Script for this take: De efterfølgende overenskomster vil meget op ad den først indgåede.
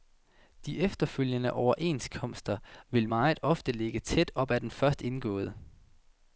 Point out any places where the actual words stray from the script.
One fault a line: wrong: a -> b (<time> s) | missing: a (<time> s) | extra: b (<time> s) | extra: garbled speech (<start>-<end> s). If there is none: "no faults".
extra: ofte ligge tæt (3.4 s)